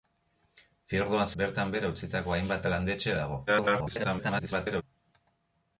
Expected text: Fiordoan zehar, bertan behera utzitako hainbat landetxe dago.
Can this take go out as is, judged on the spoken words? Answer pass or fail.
fail